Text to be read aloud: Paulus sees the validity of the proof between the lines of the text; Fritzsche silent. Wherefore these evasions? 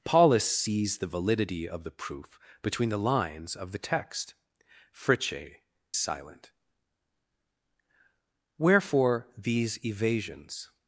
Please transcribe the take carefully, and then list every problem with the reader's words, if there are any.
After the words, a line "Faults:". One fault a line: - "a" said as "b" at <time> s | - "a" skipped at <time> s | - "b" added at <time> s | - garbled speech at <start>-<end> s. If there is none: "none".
Paulus sees the validity of the proof between the lines of the text; Fritzsche silent. Wherefore these evasions?
Faults:
none